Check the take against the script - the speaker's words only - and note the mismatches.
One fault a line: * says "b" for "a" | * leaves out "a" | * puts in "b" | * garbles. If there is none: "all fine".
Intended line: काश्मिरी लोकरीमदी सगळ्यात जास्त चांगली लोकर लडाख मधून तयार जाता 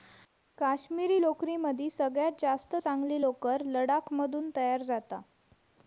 all fine